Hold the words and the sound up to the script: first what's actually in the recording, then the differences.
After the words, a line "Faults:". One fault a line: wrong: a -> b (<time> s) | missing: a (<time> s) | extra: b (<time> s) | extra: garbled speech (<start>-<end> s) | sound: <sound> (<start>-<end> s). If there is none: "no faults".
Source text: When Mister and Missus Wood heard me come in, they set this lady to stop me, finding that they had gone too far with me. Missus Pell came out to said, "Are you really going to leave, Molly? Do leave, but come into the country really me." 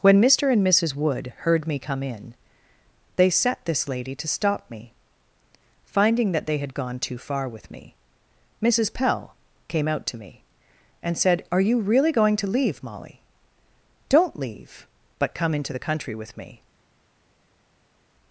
When Mister and Missus Wood heard me come in, they set this lady to stop me, finding that they had gone too far with me. Missus Pell came out to me, and said, "Are you really going to leave, Molly? Don't leave, but come into the country with me."
Faults:
extra: me and (10.2 s)
wrong: Do -> Don't (14.1 s)
wrong: really -> with (16.2 s)